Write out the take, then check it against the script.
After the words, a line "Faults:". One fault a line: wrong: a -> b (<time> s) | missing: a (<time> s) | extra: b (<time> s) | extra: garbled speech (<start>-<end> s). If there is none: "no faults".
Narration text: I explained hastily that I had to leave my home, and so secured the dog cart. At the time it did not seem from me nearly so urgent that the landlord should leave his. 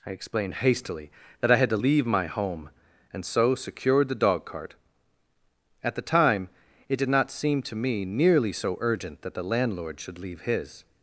I explained hastily that I had to leave my home, and so secured the dog cart. At the time it did not seem to me nearly so urgent that the landlord should leave his.
Faults:
wrong: from -> to (7.6 s)